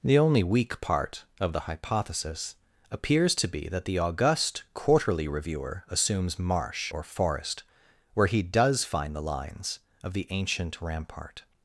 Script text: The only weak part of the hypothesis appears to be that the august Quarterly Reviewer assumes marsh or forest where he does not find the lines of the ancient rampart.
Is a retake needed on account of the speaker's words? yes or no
yes